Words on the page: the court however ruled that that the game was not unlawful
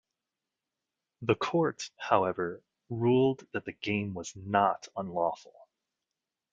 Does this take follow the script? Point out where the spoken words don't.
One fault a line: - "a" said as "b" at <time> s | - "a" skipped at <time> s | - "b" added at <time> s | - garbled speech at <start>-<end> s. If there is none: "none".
- "that" skipped at 3.7 s